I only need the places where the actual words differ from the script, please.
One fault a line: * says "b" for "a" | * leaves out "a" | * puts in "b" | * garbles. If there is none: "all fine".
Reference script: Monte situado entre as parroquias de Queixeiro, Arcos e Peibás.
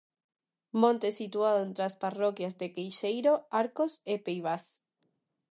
all fine